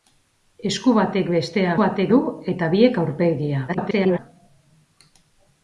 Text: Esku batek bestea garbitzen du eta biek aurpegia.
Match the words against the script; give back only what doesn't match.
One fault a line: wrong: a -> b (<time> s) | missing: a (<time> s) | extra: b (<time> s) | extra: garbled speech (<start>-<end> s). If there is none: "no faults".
wrong: garbitzen -> batek (1.8 s)
extra: garbled speech (3.7-4.2 s)